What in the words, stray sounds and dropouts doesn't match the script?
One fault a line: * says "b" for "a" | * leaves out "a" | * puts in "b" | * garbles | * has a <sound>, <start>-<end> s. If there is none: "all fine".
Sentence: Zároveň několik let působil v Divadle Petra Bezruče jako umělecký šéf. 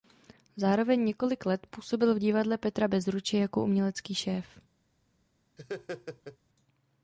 * has a laugh, 5.6-6.4 s